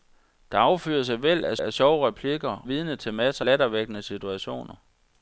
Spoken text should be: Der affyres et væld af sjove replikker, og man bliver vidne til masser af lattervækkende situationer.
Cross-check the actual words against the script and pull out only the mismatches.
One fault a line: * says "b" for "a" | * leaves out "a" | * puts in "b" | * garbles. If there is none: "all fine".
* puts in "af"
* leaves out "og man bliver"
* leaves out "af"